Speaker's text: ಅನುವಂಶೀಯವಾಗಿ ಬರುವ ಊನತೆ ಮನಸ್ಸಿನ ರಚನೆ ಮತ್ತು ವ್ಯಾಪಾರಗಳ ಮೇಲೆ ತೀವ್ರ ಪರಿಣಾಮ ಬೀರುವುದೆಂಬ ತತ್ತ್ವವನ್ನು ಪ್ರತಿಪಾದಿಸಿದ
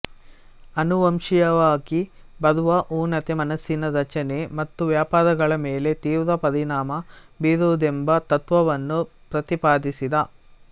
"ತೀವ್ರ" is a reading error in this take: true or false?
false